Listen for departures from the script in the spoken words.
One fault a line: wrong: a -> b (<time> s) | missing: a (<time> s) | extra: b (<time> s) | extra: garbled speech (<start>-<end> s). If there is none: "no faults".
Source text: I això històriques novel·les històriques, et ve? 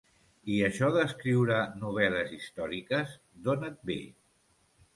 wrong: històriques -> d'escriure (0.9 s)
extra: d'on (3.5 s)